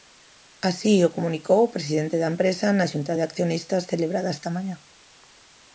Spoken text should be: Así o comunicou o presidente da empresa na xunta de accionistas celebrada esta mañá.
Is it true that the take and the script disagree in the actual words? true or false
false